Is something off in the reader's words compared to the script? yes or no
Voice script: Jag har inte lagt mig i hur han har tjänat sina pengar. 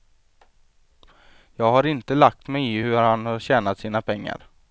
no